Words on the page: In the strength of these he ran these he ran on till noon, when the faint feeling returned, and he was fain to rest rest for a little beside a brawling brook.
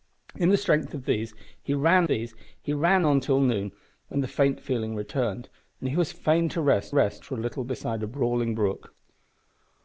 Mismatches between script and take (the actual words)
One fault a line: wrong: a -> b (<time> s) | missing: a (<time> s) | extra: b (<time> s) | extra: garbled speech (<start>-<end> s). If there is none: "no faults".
no faults